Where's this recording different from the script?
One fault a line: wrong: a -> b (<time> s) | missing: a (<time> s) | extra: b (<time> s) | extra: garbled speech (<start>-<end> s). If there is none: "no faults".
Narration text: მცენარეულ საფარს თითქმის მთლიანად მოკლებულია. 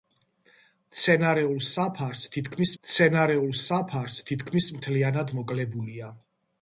extra: მცენარეულ საფარს თითქმის (2.8 s)